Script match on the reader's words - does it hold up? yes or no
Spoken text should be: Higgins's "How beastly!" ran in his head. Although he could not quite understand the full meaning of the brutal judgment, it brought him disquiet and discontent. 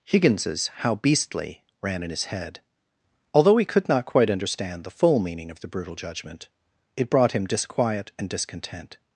yes